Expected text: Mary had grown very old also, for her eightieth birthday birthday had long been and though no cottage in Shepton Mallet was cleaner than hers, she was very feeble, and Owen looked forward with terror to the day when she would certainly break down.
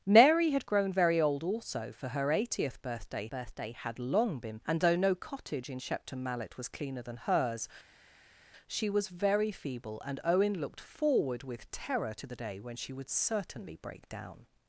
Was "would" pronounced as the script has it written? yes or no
yes